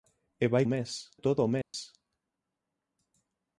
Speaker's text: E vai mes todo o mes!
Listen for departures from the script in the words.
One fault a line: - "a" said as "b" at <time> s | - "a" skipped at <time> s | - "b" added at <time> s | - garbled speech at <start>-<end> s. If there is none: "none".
none